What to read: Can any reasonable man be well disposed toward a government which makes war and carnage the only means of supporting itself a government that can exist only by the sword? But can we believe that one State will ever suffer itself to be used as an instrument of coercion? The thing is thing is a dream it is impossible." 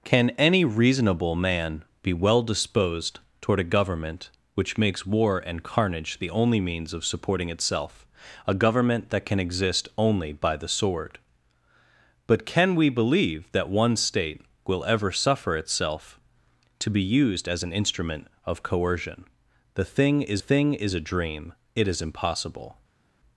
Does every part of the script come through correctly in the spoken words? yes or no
yes